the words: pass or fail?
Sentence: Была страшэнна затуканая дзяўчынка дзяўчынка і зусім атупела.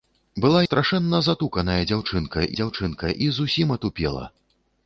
pass